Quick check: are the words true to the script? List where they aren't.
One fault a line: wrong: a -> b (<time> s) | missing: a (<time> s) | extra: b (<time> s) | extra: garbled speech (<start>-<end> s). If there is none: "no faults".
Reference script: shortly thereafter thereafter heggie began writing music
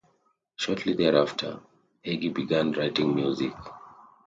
missing: thereafter (1.6 s)